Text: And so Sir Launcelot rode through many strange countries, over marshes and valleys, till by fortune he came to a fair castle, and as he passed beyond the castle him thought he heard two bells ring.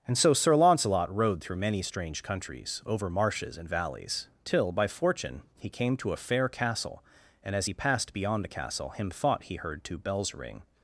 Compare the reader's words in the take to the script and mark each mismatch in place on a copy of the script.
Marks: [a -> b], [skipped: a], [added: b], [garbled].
And so Sir Launcelot rode through many strange countries, over marshes and valleys, till by fortune he came to a fair castle, and as he passed beyond the castle him thought he heard two bells ring.